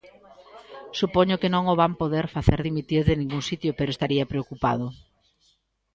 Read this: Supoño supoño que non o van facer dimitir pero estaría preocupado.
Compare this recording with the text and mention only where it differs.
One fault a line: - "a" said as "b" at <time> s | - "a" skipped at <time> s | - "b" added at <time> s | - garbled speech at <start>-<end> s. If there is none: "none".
- "supoño" skipped at 1.4 s
- "poder" added at 2.0 s
- "de ningún sitio" added at 3.1 s